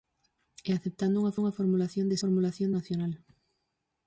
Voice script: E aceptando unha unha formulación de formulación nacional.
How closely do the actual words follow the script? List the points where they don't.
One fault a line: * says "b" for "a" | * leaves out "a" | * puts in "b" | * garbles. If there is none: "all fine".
all fine